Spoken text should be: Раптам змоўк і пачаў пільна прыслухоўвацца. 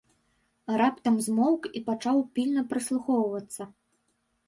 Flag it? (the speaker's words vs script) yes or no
no